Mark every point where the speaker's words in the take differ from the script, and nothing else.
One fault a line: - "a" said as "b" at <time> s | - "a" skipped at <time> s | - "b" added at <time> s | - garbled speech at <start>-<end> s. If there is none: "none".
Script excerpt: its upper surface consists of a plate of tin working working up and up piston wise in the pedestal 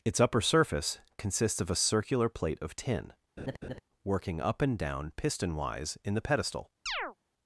- "circular" added at 1.8 s
- "working" skipped at 4.4 s
- "up" said as "down" at 4.8 s